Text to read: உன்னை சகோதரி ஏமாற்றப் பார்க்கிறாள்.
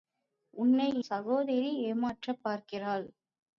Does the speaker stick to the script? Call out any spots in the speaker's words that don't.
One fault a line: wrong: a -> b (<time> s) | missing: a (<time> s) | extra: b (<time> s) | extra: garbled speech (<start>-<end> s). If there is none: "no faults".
no faults